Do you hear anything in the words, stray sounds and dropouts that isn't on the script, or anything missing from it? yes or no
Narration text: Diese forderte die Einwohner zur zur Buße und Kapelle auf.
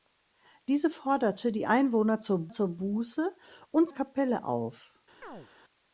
yes